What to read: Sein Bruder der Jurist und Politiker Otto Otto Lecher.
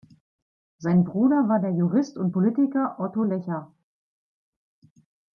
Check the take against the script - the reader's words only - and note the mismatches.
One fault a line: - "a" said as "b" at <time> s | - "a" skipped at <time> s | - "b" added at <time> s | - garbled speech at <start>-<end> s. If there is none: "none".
- "war" added at 1.5 s
- "Otto" skipped at 3.2 s